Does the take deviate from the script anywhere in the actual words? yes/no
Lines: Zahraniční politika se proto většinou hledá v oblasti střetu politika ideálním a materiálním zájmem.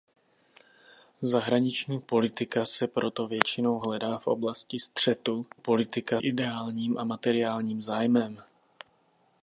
no